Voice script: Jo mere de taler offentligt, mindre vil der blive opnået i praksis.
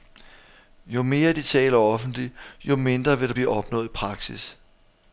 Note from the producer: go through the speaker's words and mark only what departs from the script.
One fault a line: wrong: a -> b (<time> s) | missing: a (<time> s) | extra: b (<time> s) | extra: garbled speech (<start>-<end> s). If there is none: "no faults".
extra: jo (2.6 s)